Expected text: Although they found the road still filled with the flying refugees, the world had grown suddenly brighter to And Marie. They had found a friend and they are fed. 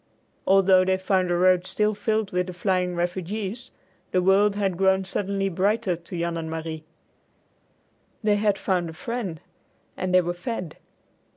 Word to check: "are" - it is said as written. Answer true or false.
false